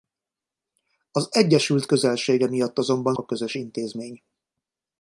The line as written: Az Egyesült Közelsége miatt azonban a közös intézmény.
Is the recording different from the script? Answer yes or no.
no